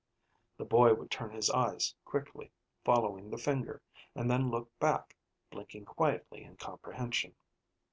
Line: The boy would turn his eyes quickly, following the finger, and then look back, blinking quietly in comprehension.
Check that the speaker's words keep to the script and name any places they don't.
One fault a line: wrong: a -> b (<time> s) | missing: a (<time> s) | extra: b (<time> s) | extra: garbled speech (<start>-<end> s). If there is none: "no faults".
no faults